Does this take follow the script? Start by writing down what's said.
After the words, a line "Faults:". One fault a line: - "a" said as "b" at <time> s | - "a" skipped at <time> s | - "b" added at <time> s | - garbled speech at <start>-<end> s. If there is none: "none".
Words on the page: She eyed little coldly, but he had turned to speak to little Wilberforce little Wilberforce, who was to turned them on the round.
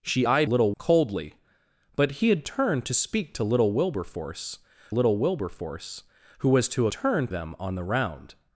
She eyed little coldly, but he had turned to speak to little Wilberforce little Wilberforce, who was to turned them on the round.
Faults:
none